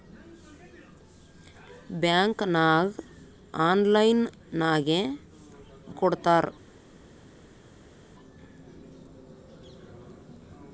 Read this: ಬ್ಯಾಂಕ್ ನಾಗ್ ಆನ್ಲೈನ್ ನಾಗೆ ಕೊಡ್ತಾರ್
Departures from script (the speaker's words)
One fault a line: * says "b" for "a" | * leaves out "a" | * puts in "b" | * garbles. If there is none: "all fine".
all fine